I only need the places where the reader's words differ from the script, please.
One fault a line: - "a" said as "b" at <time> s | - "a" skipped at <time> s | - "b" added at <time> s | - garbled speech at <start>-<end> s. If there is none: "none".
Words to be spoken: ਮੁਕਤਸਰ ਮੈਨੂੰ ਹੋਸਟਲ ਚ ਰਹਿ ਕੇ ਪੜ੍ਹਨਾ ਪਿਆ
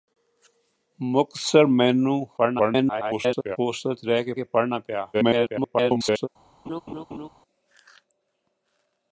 - garbled speech at 2.4-3.6 s
- "ਕੇ" added at 4.3 s
- garbled speech at 5.1-6.3 s